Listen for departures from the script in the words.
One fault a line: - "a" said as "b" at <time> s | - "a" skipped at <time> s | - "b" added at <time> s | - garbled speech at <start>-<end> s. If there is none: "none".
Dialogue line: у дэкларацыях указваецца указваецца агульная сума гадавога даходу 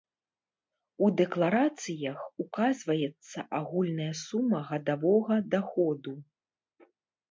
- "указваецца" skipped at 3.5 s